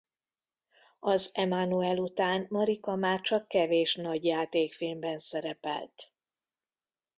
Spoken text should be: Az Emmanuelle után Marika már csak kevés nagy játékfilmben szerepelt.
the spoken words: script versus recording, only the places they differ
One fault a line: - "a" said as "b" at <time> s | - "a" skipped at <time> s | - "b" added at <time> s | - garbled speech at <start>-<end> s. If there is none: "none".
none